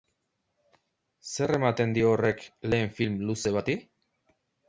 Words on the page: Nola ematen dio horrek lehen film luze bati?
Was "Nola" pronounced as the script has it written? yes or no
no